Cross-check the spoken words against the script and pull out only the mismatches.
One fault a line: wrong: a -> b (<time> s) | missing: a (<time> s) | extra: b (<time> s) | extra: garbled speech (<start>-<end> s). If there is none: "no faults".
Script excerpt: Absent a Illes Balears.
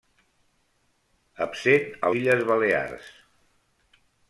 no faults